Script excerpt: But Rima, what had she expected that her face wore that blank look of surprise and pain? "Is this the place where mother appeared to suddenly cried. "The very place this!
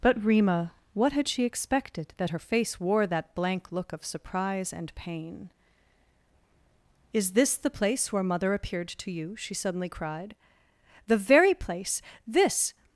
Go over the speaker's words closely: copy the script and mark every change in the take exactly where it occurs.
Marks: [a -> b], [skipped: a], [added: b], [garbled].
But Rima, what had she expected that her face wore that blank look of surprise and pain? "Is this the place where mother appeared to [added: you she] suddenly cried. "The very place this!